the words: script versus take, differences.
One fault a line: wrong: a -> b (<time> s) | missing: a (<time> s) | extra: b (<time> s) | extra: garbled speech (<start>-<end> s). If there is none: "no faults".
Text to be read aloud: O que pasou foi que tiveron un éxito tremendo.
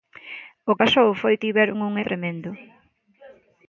missing: que (0.7 s)
missing: que (1.3 s)
missing: éxito (1.9 s)